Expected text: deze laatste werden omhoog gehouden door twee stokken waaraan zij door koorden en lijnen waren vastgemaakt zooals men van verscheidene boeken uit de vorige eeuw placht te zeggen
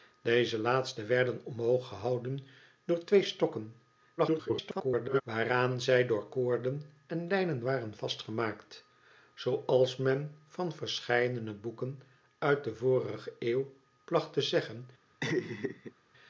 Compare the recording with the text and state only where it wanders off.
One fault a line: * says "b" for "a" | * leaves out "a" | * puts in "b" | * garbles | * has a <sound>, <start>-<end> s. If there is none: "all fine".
* garbles
* has a laugh, 15.2-15.9 s